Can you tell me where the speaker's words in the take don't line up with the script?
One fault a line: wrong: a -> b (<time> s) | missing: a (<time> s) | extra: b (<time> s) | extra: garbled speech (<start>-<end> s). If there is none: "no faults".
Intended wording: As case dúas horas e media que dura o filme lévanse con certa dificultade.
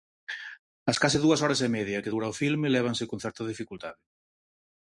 no faults